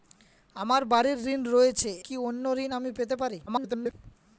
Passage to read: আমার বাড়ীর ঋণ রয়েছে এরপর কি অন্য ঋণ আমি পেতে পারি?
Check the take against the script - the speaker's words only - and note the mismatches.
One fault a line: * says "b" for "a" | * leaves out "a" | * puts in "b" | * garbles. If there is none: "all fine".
* leaves out "এরপর"
* garbles